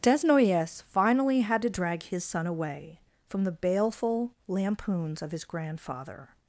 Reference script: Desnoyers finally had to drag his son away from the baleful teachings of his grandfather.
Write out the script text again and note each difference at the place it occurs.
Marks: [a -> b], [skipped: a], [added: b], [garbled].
Desnoyers finally had to drag his son away from the baleful [teachings -> lampoons] of his grandfather.